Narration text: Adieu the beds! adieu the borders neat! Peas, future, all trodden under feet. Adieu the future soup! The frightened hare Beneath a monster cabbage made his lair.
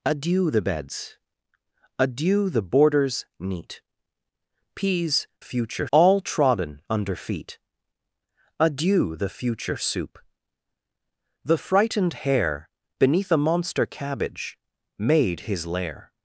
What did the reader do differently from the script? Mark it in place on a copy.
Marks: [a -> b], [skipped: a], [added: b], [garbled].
Adieu the beds! adieu the borders neat! Peas, future, all trodden under feet. Adieu the future soup! The frightened hare Beneath a monster cabbage made his lair.